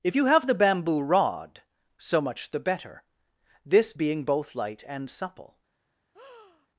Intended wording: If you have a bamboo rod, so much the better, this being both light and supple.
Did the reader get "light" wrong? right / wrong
right